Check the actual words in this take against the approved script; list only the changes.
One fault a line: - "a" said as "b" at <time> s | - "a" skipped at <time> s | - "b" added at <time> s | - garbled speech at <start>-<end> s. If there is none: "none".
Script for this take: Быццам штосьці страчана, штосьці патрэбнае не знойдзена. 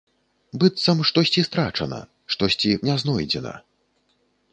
- "патрэбнае" skipped at 2.7 s